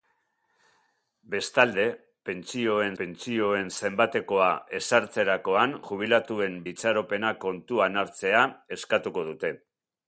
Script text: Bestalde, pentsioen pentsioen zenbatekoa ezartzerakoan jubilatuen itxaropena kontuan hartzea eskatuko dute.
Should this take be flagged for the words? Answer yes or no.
no